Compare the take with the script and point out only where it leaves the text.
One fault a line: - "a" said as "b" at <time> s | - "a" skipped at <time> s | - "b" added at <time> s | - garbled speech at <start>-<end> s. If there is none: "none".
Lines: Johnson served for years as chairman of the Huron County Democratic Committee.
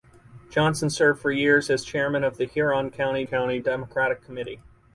- "County" added at 3.2 s